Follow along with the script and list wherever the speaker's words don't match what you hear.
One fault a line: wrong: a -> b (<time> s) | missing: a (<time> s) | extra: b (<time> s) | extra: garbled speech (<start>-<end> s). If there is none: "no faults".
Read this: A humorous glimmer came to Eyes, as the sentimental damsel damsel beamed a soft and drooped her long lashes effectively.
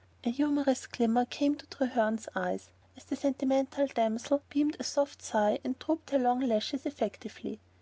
extra: Treherne's (1.7 s)
missing: damsel (4.4 s)
extra: sigh (5.2 s)